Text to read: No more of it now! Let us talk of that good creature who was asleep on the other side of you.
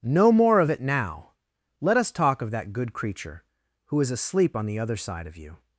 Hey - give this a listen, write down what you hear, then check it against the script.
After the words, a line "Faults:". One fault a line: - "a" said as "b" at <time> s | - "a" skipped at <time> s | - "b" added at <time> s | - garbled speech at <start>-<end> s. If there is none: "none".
No more of it now! Let us talk of that good creature who is asleep on the other side of you.
Faults:
- "was" said as "is" at 4.0 s